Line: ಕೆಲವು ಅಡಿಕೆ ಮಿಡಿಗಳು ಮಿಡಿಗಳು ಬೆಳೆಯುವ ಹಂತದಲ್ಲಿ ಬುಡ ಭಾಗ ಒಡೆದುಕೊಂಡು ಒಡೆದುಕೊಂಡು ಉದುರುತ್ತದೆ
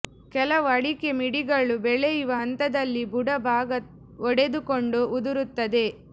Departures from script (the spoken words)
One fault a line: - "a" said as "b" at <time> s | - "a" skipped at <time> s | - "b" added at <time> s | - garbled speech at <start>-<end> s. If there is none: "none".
- "ಮಿಡಿಗಳು" skipped at 1.8 s
- "ಒಡೆದುಕೊಂಡು" skipped at 5.0 s